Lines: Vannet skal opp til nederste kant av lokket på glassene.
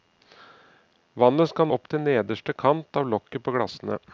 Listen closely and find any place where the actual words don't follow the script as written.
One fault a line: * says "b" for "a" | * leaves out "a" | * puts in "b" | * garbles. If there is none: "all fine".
all fine